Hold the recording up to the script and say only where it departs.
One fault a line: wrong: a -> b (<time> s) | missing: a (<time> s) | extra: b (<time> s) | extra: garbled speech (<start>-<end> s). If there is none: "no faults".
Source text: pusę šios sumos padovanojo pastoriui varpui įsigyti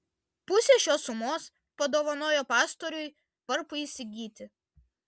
no faults